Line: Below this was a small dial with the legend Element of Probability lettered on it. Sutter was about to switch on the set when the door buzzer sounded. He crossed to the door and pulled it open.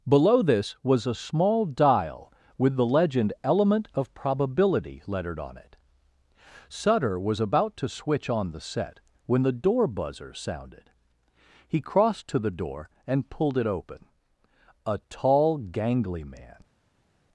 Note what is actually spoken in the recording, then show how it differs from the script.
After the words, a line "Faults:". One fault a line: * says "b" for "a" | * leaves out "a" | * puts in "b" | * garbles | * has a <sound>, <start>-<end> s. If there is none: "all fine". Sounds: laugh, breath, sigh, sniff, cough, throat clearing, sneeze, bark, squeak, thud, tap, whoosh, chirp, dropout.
Below this was a small dial with the legend Element of Probability lettered on it. Sutter was about to switch on the set when the door buzzer sounded. He crossed to the door and pulled it open. A tall gangly man
Faults:
* puts in "A tall gangly man"